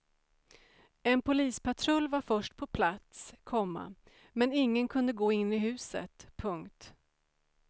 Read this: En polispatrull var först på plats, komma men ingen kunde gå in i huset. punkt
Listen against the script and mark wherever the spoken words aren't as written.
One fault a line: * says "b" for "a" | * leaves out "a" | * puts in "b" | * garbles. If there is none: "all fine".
all fine